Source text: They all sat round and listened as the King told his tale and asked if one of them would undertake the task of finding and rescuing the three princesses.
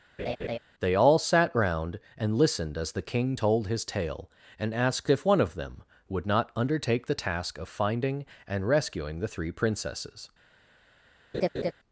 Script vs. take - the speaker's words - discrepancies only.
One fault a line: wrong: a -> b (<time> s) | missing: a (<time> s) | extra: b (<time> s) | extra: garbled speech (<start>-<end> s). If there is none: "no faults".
extra: not (6.3 s)